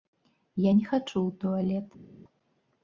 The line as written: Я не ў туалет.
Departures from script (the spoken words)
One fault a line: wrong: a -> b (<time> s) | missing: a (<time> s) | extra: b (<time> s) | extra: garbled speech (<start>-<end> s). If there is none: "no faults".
extra: хачу (0.9 s)